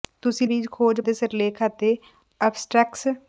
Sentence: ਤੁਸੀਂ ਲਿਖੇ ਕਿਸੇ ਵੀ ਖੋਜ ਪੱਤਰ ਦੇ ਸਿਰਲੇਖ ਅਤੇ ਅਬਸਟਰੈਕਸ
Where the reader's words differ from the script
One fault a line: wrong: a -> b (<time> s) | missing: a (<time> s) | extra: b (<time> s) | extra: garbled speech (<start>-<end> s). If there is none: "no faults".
missing: ਲਿਖੇ ਕਿਸੇ (0.5 s)
missing: ਪੱਤਰ (1.0 s)